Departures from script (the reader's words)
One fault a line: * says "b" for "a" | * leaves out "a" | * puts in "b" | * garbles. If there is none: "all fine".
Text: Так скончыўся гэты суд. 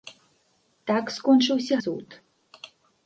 * leaves out "гэты"